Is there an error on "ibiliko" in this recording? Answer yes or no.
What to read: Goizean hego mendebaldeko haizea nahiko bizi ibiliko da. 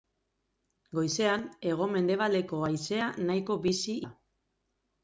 yes